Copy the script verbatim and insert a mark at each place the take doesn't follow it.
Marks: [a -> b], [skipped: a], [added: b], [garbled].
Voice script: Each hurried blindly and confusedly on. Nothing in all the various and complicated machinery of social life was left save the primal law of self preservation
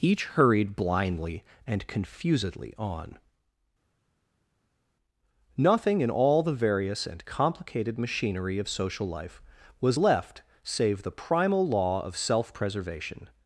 Each hurried blindly and confusedly on. Nothing in all the various and complicated machinery of social life was left save the primal law of self preservation